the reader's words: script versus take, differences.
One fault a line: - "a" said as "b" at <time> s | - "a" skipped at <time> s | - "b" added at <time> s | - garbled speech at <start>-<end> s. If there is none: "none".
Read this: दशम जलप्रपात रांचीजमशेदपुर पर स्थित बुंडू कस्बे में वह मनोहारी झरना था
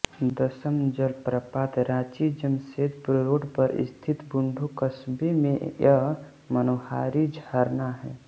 - "रोड" added at 3.2 s
- "वह" said as "यह" at 5.8 s
- "था" said as "है" at 8.0 s